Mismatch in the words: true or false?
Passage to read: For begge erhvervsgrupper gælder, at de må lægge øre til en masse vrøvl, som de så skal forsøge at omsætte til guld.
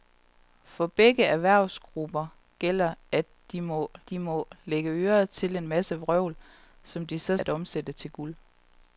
true